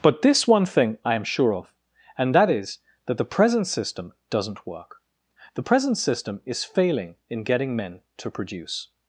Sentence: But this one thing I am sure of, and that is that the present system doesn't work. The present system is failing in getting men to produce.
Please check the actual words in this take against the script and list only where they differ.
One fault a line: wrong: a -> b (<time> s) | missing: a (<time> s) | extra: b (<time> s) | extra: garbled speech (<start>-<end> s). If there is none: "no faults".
no faults